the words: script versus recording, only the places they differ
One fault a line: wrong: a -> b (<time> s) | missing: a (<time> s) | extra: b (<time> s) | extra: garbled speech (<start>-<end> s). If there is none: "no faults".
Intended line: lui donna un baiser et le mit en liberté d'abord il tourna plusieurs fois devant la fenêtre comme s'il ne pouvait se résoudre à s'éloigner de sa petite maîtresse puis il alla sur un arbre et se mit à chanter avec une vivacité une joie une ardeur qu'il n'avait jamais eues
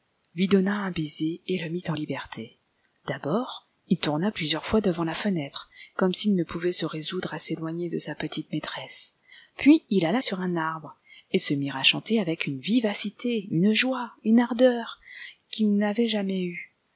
no faults